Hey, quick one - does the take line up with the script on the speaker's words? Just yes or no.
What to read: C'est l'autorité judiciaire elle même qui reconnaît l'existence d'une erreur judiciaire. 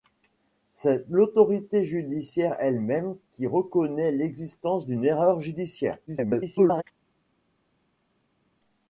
no